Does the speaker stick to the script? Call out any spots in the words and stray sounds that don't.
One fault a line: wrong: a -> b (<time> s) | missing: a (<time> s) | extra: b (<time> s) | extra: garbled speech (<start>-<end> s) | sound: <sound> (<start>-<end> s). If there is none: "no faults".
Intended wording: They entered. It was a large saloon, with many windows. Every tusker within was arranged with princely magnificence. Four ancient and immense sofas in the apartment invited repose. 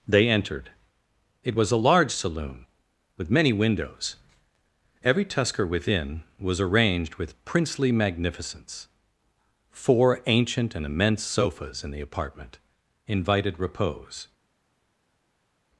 no faults